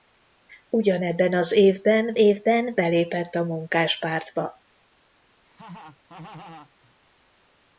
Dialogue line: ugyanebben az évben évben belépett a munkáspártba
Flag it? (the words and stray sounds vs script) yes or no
yes